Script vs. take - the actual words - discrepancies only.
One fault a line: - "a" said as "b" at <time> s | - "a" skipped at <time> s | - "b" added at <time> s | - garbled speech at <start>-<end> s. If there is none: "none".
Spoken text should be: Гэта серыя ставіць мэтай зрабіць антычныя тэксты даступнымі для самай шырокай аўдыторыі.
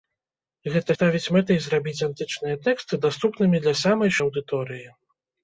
- "серыя" skipped at 0.9 s
- "шырокай" skipped at 4.1 s